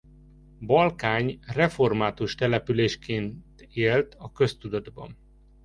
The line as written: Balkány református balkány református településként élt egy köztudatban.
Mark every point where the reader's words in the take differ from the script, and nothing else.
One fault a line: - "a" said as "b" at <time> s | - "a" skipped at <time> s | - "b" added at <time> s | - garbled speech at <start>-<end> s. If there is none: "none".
- "balkány református" skipped at 2.4 s
- "egy" said as "a" at 4.2 s